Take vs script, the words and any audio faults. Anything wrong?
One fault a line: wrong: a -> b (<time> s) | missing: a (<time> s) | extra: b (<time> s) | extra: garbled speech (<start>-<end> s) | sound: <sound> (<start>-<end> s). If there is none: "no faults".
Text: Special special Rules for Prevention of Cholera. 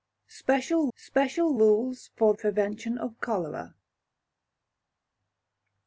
no faults